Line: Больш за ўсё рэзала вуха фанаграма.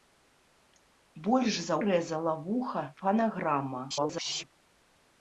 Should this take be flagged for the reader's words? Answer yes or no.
yes